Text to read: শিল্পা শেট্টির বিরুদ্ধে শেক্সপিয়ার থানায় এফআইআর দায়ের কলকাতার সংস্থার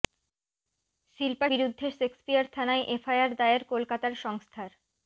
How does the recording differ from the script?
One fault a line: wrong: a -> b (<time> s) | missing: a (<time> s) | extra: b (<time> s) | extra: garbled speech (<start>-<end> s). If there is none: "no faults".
missing: শেট্টির (1.5 s)